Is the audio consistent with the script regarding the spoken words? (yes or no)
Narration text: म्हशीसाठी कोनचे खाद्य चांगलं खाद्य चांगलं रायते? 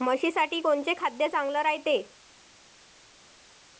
no